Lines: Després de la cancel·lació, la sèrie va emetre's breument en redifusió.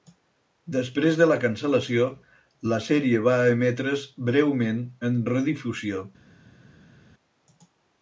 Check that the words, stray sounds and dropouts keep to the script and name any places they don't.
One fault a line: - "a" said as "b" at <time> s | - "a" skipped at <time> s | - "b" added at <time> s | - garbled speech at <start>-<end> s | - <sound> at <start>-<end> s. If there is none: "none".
none